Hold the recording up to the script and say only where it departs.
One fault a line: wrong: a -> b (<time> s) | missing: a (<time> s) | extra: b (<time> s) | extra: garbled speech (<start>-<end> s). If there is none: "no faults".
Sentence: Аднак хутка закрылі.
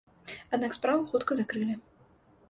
extra: справу (0.8 s)